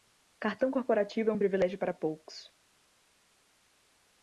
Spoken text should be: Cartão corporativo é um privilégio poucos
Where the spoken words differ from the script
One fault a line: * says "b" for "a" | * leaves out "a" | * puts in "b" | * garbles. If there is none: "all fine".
* puts in "para"